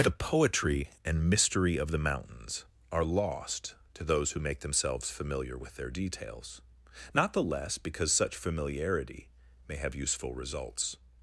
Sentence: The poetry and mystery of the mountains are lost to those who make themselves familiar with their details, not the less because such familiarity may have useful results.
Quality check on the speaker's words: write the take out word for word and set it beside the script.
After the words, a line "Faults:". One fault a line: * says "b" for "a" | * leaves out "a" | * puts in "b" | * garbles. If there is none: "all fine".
The poetry and mystery of the mountains are lost to those who make themselves familiar with their details, not the less because such familiarity may have useful results.
Faults:
all fine